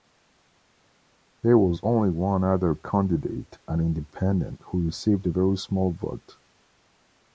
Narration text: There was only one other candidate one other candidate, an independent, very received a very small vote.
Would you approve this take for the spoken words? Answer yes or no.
no